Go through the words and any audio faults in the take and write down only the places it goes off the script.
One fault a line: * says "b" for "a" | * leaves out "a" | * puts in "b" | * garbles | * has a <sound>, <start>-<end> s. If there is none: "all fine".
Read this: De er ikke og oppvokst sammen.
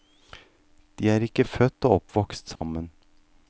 * puts in "født"
* has a dropout, 2.6-2.6 s